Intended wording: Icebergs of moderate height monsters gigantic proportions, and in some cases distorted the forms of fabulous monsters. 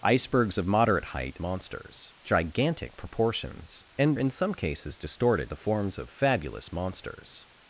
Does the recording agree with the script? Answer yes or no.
yes